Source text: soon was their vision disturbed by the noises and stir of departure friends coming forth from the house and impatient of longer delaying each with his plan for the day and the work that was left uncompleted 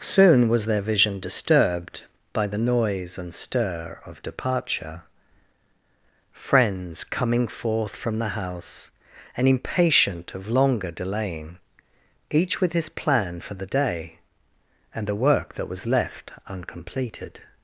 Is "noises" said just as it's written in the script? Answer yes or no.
no